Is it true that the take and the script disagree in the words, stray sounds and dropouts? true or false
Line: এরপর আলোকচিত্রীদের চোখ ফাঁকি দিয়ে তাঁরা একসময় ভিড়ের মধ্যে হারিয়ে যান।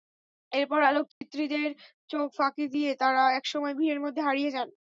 true